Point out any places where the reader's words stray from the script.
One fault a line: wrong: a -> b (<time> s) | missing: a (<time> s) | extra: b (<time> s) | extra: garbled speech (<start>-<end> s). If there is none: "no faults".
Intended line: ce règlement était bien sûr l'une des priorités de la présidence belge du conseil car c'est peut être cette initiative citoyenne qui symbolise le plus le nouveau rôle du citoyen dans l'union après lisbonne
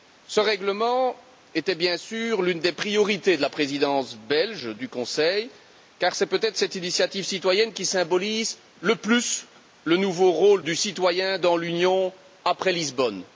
no faults